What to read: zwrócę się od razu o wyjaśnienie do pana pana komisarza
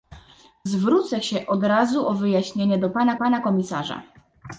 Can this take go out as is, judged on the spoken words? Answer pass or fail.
pass